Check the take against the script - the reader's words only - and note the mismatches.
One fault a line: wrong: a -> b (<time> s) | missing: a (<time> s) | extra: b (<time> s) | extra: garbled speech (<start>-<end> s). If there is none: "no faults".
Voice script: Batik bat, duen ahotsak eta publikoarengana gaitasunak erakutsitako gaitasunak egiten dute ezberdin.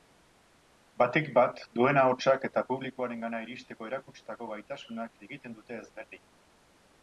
wrong: gaitasunak -> iristeko (3.5 s)